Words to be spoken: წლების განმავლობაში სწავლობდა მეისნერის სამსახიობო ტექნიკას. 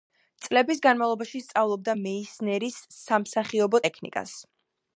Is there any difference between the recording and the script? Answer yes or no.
no